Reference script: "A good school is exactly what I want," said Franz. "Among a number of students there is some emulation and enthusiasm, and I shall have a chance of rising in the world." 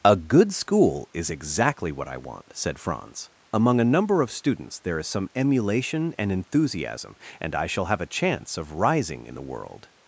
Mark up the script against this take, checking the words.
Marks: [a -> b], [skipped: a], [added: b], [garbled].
"A good school is exactly what I want," said Franz. "Among a number of students there is some emulation and enthusiasm, and I shall have a chance of rising in the world."